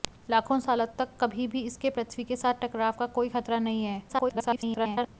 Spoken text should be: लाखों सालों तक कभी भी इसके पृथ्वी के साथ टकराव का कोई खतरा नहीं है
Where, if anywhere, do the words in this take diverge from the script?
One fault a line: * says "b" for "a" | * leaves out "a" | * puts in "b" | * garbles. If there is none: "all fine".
* garbles